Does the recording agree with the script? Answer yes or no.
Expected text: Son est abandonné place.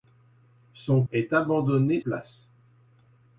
yes